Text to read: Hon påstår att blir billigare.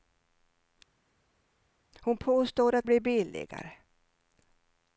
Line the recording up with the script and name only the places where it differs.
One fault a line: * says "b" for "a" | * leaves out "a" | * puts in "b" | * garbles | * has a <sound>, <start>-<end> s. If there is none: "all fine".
all fine